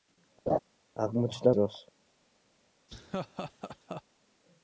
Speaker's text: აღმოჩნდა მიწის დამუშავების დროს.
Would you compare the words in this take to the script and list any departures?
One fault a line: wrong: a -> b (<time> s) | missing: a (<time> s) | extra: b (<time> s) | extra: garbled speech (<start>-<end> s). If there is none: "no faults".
missing: მიწის დამუშავების (1.5 s)